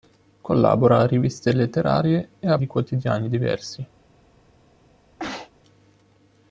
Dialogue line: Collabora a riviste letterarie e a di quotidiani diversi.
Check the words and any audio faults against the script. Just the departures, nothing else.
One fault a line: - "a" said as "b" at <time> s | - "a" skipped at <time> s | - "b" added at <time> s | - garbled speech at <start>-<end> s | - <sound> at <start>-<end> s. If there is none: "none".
- sneeze at 5.2-5.5 s